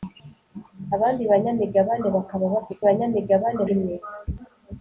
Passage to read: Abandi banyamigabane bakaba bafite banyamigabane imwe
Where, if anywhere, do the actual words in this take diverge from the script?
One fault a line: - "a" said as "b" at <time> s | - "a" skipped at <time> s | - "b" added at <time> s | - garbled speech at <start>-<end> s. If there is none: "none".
none